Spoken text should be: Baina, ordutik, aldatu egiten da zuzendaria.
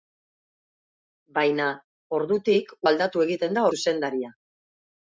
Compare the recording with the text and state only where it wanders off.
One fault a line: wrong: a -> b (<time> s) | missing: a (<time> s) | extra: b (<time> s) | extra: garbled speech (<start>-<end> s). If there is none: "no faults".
no faults